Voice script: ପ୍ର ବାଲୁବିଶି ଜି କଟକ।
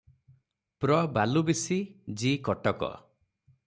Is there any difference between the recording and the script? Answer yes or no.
no